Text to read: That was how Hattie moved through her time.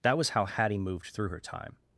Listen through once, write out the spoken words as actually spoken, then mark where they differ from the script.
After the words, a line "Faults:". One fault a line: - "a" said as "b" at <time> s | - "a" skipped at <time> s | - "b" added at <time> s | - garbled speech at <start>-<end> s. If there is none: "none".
That was how Hattie moved through her time.
Faults:
none